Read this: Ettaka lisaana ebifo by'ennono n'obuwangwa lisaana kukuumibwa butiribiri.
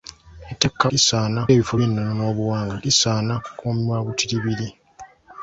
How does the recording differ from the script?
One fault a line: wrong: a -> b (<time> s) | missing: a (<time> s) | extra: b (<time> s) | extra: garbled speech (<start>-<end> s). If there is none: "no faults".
no faults